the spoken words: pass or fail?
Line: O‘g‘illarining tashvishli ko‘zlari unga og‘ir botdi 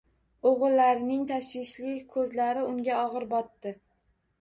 pass